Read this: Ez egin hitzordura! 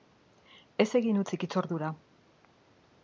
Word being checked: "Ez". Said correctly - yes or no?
yes